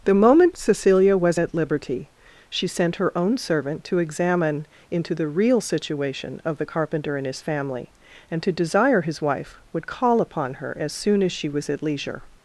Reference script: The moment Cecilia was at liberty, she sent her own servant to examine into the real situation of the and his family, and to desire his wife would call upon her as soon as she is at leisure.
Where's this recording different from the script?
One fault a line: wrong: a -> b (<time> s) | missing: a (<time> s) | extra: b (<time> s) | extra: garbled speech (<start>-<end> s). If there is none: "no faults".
extra: carpenter (6.6 s)
wrong: is -> was (11.5 s)